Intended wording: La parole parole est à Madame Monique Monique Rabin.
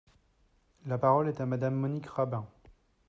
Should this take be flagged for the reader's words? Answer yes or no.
yes